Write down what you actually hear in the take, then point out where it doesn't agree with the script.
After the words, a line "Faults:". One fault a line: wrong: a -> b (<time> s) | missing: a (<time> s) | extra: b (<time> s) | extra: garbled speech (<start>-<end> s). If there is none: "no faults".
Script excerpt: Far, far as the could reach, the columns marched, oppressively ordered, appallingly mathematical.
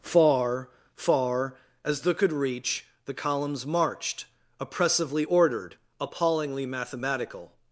Far, far as the could reach, the columns marched, oppressively ordered, appallingly mathematical.
Faults:
no faults